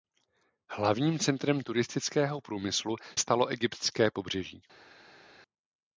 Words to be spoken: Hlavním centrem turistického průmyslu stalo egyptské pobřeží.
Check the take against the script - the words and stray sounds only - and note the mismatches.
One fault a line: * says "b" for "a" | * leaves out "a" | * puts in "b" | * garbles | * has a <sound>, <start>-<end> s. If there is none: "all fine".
all fine